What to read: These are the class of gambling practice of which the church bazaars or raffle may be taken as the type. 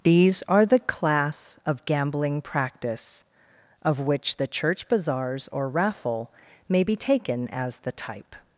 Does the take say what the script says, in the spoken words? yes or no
yes